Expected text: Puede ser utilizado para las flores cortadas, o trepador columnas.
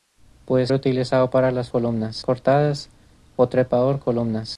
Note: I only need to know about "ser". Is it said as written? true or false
false